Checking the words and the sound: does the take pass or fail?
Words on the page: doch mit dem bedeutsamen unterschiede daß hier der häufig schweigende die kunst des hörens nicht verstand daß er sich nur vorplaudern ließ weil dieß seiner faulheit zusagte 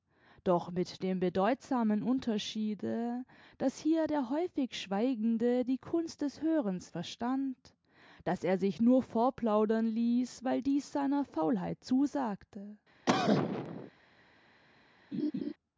fail